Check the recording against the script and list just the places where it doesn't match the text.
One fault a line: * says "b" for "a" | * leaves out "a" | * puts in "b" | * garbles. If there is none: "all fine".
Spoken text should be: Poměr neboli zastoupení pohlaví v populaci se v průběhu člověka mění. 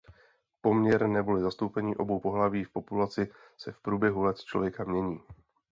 * puts in "obou"
* puts in "let"